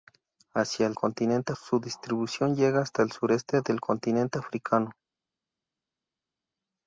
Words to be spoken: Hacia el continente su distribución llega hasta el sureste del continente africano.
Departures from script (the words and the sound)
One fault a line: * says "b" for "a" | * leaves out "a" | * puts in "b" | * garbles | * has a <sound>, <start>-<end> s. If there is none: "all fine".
all fine